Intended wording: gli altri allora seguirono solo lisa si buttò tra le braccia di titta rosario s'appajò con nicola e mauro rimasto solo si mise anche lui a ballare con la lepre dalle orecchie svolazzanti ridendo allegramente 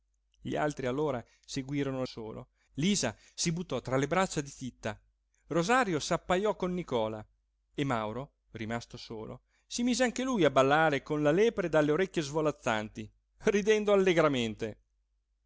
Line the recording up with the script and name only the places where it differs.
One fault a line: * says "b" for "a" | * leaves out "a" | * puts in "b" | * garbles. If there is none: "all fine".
all fine